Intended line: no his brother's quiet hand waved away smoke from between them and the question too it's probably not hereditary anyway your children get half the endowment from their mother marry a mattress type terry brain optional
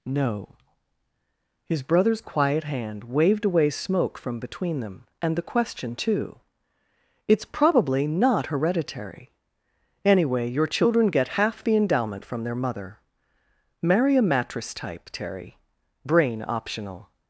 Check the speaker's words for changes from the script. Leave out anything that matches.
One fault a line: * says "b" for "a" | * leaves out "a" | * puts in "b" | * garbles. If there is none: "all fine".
all fine